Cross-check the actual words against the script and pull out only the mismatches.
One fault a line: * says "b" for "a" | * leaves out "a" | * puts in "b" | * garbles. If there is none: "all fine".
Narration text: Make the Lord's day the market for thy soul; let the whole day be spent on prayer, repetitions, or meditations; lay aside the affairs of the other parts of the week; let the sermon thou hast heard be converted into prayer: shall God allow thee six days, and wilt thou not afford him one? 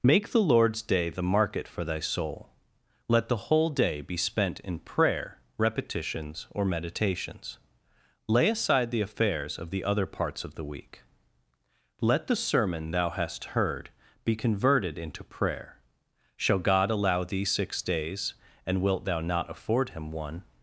* says "in" for "on"